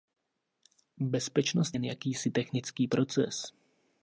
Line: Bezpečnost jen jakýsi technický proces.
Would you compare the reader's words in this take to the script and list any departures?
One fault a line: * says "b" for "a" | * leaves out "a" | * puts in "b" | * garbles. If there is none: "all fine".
all fine